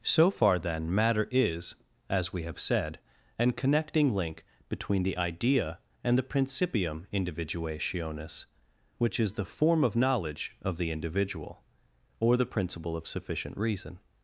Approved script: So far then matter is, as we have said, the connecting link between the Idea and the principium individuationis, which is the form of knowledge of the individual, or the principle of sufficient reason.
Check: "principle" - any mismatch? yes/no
no